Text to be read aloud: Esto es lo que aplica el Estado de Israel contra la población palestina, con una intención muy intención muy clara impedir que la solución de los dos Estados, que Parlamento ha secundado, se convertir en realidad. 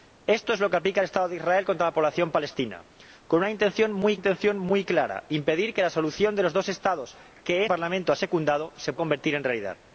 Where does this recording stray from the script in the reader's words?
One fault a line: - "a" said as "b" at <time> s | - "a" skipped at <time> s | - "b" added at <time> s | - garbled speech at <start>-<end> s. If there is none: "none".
none